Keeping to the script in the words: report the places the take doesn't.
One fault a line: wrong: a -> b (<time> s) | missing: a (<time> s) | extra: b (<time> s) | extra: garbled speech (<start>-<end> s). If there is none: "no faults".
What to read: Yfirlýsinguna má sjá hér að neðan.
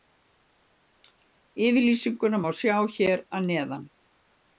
no faults